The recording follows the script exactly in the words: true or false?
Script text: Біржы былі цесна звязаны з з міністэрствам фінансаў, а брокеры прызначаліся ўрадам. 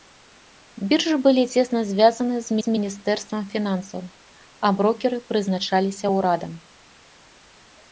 true